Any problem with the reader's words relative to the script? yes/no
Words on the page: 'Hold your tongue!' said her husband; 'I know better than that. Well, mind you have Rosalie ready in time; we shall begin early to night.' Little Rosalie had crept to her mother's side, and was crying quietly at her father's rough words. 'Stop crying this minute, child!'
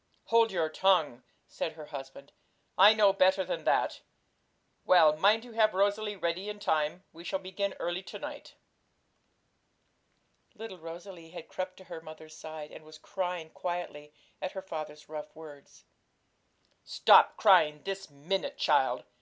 no